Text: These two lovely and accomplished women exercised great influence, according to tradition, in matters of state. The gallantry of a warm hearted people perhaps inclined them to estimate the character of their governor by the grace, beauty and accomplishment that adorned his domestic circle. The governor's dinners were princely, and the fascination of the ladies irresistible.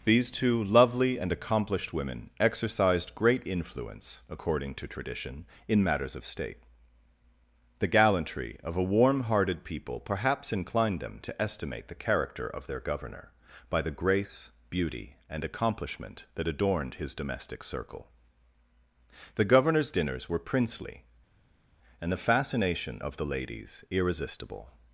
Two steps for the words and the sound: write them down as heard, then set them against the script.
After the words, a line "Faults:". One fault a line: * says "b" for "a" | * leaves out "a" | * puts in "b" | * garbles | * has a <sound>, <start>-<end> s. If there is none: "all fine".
These two lovely and accomplished women exercised great influence, according to tradition, in matters of state. The gallantry of a warm hearted people perhaps inclined them to estimate the character of their governor by the grace, beauty and accomplishment that adorned his domestic circle. The governor's dinners were princely, and the fascination of the ladies irresistible.
Faults:
all fine